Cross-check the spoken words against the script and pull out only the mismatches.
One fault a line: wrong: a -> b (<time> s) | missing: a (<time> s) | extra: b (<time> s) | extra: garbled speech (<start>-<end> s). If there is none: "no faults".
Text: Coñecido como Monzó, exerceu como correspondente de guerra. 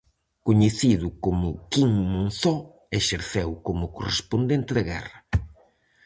extra: Quim (1.7 s)